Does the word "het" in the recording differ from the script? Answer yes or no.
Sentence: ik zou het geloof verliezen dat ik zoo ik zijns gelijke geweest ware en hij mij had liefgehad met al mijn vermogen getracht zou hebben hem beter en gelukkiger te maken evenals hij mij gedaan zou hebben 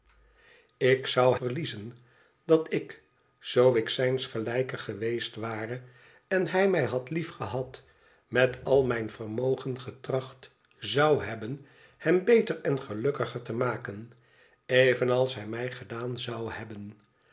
yes